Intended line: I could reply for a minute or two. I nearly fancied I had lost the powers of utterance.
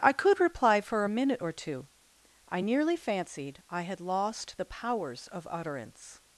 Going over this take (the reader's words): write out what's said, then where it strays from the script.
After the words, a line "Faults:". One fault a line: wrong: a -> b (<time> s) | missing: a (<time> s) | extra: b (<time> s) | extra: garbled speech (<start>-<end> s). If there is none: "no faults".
I could reply for a minute or two. I nearly fancied I had lost the powers of utterance.
Faults:
no faults